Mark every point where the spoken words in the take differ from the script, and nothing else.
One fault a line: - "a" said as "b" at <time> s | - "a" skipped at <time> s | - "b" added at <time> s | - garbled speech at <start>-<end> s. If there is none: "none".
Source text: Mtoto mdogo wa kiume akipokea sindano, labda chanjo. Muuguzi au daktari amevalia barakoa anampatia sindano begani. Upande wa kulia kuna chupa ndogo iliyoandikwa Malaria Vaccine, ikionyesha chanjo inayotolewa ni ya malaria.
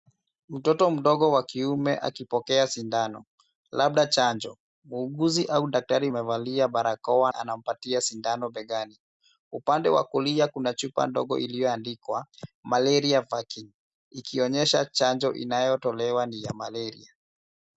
none